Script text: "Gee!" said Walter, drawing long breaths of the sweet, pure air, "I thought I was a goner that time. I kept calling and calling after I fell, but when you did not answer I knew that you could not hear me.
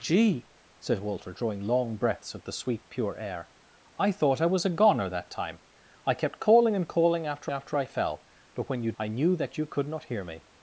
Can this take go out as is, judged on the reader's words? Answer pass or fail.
fail